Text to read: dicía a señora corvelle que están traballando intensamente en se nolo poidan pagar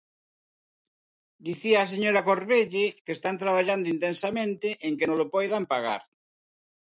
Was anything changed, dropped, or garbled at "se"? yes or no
yes